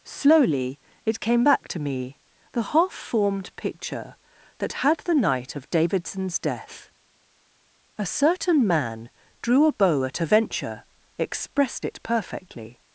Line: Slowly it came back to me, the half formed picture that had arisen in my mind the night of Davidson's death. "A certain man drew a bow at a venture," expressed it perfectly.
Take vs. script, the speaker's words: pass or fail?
fail